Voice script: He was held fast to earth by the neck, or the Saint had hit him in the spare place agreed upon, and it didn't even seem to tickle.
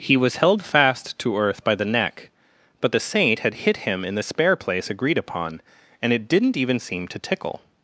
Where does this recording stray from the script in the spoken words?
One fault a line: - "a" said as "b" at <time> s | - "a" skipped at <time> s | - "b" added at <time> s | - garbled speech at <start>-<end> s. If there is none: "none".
- "or" said as "but" at 2.8 s